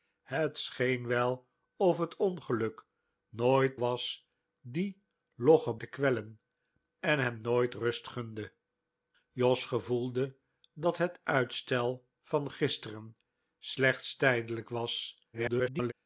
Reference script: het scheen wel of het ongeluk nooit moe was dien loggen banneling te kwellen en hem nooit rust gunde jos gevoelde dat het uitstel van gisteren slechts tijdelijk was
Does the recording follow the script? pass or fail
fail